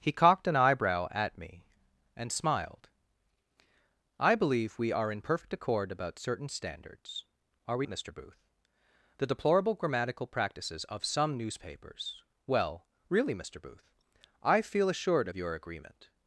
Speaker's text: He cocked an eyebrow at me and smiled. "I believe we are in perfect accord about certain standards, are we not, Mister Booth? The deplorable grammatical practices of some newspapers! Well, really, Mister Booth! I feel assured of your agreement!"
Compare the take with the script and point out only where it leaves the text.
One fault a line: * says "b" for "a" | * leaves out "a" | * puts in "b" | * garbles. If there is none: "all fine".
* leaves out "not"